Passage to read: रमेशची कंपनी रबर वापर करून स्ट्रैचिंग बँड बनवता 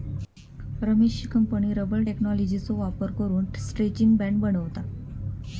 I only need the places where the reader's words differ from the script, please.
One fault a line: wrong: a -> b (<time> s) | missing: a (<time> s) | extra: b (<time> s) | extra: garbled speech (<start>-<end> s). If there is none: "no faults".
extra: टेक्नॉलॉजीचो (2.1 s)